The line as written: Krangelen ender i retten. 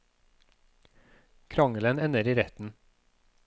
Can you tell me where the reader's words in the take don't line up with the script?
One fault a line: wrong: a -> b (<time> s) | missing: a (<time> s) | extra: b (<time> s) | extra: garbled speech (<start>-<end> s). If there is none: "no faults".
no faults